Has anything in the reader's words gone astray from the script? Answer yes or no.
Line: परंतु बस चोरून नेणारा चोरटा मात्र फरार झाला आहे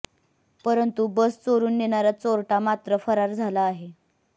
no